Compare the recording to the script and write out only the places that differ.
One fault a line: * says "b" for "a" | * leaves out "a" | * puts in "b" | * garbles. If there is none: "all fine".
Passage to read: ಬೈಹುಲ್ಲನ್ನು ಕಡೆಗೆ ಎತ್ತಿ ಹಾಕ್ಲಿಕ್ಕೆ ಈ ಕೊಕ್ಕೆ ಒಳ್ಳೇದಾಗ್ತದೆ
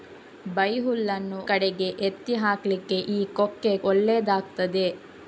all fine